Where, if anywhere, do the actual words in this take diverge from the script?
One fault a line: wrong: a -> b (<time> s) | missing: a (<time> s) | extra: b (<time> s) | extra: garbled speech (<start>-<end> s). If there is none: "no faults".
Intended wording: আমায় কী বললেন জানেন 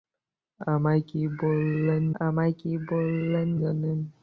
extra: আমায় কী বললেন (2.2 s)